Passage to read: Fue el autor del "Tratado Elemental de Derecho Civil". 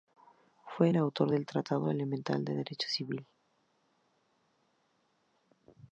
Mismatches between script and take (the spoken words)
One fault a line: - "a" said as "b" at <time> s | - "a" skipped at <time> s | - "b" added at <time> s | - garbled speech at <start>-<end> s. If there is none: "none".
none